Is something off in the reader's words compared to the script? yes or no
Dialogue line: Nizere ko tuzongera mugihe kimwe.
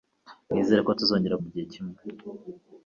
no